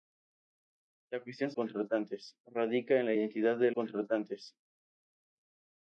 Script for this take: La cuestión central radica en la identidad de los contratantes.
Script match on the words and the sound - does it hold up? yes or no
no